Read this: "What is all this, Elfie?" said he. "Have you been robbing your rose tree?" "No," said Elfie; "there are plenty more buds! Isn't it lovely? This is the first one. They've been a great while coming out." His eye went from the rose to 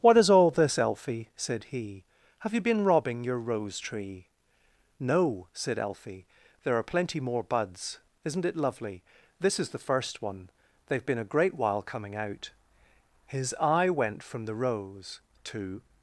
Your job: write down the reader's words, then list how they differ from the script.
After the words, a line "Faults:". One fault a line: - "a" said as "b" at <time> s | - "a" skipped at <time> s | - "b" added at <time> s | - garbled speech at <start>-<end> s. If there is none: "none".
"What is all this, Elfie?" said he. "Have you been robbing your rose tree?" "No," said Elfie; "there are plenty more buds! Isn't it lovely? This is the first one. They've been a great while coming out." His eye went from the rose to
Faults:
none